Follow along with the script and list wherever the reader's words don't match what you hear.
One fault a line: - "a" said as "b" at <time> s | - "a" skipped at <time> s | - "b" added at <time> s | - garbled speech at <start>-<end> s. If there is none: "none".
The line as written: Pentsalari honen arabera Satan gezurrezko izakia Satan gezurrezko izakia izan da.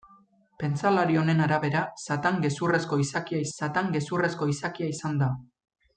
none